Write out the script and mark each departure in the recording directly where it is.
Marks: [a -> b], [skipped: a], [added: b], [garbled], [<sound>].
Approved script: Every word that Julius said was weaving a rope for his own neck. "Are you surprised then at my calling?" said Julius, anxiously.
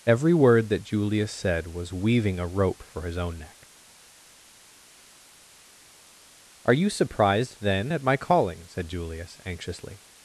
Every word that Julius said was weaving a rope for his own neck. "Are you surprised then at my calling?" said Julius, anxiously.